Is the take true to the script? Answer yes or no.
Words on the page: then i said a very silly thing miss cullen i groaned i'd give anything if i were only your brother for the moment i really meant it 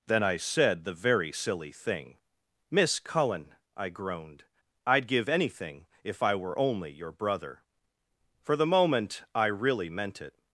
no